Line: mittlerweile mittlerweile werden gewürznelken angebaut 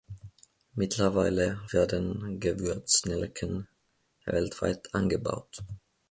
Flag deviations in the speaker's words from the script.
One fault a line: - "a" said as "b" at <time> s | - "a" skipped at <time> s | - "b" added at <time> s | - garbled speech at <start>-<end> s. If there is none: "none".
- "mittlerweile" skipped at 1.6 s
- "weltweit" added at 4.2 s